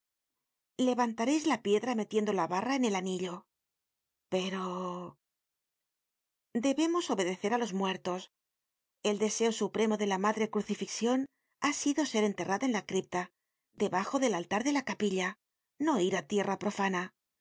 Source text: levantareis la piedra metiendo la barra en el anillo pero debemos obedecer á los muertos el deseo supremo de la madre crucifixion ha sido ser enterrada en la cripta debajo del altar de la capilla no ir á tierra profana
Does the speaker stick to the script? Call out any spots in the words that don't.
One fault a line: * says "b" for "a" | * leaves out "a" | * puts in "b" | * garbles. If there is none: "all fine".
all fine